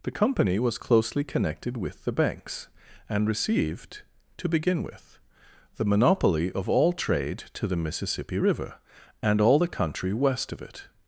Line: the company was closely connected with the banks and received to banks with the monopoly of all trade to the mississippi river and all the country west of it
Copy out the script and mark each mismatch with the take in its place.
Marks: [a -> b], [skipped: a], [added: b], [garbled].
the company was closely connected with the banks and received to [banks -> begin] with the monopoly of all trade to the mississippi river and all the country west of it